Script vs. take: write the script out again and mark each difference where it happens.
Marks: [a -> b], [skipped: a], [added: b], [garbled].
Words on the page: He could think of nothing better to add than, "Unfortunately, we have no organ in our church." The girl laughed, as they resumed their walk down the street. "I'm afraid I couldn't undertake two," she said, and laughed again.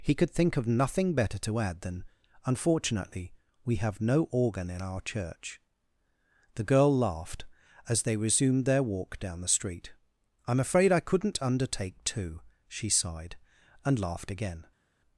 He could think of nothing better to add than, "Unfortunately, we have no organ in our church." The girl laughed, as they resumed their walk down the street. "I'm afraid I couldn't undertake two," she [said, -> sighed] and laughed again.